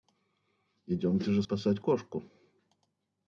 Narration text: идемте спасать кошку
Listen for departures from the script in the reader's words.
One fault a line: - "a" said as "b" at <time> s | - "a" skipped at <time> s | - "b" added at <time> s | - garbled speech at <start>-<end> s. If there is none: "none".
- "же" added at 1.3 s